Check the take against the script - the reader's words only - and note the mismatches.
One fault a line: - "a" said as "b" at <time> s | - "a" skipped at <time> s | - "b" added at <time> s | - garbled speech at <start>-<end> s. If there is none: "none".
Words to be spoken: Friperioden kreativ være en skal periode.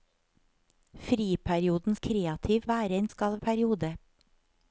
none